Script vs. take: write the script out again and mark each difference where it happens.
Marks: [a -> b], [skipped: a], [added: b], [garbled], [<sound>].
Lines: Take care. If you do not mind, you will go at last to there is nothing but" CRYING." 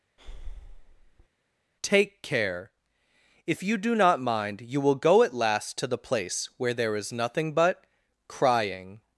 [breath] Take care. If you do not mind, you will go at last to [added: the place where] there is nothing but" CRYING."